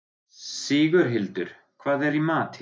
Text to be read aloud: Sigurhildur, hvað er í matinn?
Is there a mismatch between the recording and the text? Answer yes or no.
no